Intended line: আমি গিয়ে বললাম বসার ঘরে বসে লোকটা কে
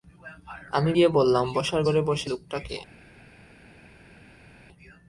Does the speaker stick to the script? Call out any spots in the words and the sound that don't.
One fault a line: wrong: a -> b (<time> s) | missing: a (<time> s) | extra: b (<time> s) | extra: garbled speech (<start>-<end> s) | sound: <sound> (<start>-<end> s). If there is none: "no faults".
no faults